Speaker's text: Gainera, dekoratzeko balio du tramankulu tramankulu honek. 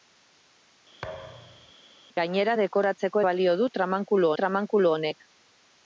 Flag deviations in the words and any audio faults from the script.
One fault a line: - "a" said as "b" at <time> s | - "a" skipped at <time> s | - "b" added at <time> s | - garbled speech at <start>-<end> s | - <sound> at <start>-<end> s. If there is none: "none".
- thud at 1.0-1.7 s